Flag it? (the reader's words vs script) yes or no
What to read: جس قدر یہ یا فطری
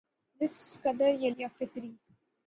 no